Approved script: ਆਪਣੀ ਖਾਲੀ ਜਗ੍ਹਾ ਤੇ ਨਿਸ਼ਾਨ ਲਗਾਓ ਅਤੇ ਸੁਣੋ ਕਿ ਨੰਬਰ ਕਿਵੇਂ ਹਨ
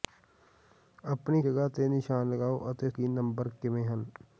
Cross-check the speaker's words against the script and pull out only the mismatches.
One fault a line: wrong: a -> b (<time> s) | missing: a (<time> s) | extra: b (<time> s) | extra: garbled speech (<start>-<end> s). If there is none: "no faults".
missing: ਖਾਲੀ (1.4 s)
missing: ਸੁਣੋ (2.9 s)